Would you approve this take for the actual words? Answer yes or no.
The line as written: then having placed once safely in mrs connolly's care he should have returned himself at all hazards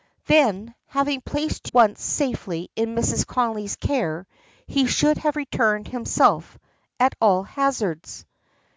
yes